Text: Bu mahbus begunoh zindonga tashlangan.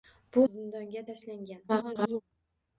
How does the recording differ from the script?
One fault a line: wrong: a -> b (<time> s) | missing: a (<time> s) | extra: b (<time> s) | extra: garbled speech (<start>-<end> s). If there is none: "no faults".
missing: mahbus begunoh (0.5 s)
extra: garbled speech (1.7-2.2 s)